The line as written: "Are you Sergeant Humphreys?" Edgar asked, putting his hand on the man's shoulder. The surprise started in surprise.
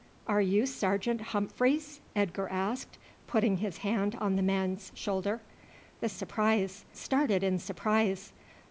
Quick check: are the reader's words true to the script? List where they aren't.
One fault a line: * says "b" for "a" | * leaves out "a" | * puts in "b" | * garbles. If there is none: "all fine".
all fine